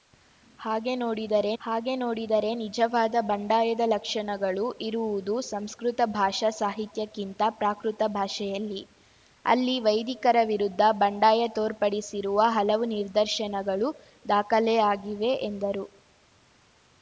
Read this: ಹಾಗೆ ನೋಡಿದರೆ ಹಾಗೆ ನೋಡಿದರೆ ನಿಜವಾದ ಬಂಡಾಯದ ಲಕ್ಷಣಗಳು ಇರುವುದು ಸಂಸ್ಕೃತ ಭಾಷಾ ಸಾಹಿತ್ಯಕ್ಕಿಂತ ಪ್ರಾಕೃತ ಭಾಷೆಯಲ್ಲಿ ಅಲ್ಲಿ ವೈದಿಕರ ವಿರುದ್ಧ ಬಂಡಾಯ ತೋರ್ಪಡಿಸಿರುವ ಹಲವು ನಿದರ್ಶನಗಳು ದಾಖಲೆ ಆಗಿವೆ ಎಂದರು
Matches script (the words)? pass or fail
pass